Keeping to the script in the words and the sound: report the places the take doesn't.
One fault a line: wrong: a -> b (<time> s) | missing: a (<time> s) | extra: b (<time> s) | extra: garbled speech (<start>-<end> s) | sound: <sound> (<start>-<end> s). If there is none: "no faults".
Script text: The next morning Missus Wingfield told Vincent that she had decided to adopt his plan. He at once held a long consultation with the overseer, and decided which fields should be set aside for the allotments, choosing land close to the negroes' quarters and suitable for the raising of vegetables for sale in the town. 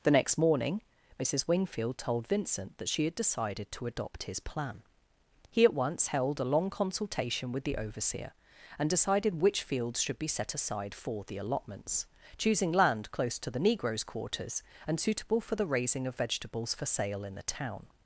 no faults